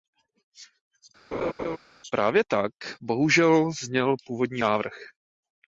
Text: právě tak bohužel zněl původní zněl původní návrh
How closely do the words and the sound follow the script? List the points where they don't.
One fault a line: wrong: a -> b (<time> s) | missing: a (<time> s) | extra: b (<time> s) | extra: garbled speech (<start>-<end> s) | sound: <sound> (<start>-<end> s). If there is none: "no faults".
sound: laugh (1.3-1.8 s)
missing: zněl původní (4.6 s)